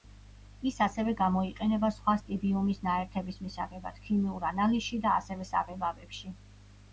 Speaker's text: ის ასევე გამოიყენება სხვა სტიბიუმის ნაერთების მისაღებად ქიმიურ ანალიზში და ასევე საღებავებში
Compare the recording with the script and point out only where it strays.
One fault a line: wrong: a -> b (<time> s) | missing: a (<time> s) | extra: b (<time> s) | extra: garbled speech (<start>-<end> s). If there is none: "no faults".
no faults